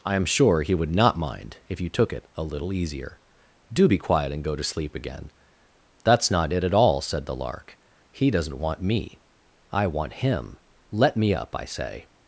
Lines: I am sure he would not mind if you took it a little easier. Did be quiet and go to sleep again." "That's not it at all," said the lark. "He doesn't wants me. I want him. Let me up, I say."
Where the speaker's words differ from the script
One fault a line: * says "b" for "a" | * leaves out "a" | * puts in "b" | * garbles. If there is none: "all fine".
* says "Do" for "Did"
* says "want" for "wants"